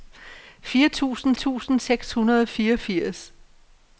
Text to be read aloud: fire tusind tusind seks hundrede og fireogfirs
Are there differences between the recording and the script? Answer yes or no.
no